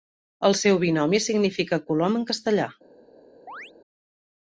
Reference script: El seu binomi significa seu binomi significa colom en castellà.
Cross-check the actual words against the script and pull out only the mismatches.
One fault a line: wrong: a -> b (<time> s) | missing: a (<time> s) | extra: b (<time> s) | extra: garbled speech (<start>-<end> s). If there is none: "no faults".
missing: seu binomi significa (1.8 s)